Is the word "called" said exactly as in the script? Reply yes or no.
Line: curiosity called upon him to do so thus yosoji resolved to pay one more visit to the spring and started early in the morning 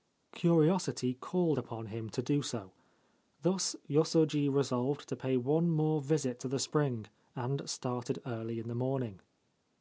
yes